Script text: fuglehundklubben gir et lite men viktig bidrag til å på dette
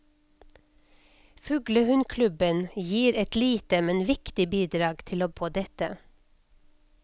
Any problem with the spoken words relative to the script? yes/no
no